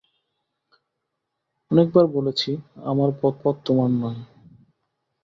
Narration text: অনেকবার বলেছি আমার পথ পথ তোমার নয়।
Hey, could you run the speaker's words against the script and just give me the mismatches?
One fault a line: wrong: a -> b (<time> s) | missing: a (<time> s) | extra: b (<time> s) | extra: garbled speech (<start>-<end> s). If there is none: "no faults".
no faults